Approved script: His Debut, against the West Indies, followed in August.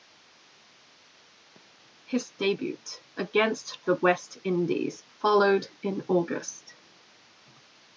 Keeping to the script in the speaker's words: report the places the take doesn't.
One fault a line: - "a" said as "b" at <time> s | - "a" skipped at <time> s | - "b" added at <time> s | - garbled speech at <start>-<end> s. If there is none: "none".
none